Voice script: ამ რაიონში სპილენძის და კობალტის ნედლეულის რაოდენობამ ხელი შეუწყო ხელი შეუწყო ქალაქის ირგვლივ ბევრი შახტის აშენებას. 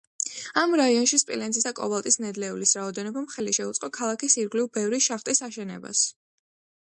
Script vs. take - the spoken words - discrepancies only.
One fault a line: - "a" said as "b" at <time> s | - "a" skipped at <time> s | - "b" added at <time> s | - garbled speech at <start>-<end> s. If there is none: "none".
- "ხელი შეუწყო" skipped at 3.9 s